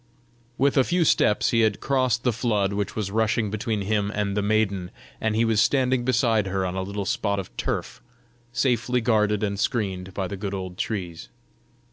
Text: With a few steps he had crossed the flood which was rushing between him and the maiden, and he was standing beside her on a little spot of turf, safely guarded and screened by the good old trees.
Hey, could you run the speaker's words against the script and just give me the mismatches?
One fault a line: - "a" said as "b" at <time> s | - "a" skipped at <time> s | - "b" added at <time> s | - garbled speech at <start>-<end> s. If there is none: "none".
none